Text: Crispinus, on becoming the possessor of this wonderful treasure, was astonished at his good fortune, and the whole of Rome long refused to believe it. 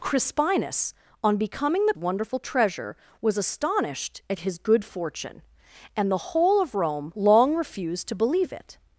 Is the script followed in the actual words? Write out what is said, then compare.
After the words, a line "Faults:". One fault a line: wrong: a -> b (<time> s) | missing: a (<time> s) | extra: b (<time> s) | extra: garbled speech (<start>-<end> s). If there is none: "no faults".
Crispinus, on becoming the wonderful treasure, was astonished at his good fortune, and the whole of Rome long refused to believe it.
Faults:
missing: possessor of this (1.9 s)